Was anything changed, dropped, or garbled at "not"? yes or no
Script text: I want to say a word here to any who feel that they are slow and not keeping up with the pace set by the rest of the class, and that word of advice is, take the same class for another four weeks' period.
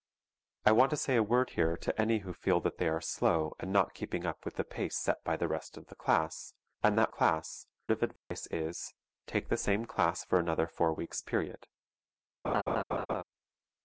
no